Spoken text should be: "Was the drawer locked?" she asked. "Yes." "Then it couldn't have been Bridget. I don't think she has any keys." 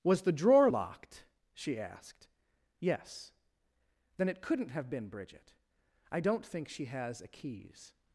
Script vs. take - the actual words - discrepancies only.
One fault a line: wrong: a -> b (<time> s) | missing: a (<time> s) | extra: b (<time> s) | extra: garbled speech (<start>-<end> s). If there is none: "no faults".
wrong: any -> a (7.2 s)